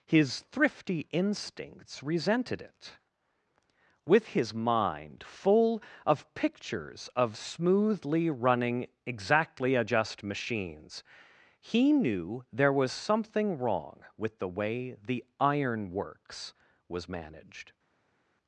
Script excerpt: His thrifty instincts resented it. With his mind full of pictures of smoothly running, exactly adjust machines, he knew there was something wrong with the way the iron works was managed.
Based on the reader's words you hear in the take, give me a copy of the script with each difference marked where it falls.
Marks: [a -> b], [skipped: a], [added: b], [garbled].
His thrifty instincts resented it. With his mind full of pictures of smoothly running, exactly adjust machines, he knew there was something wrong with the way the iron works was managed.